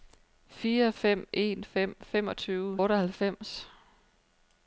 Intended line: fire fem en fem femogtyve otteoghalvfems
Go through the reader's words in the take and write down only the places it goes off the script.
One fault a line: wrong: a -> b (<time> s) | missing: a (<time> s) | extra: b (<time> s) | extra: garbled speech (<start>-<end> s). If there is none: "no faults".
no faults